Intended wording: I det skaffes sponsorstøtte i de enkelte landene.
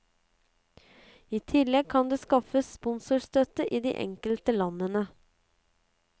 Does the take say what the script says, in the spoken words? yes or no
no